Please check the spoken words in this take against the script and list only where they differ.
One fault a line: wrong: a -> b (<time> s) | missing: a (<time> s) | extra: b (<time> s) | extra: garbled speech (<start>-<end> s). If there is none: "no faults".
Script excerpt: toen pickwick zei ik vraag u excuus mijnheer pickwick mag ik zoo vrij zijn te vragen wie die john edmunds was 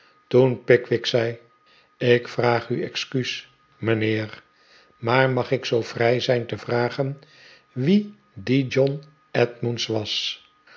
wrong: pickwick -> maar (5.0 s)